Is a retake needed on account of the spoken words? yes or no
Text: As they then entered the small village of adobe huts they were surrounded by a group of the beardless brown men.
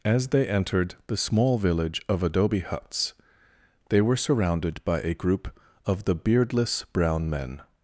yes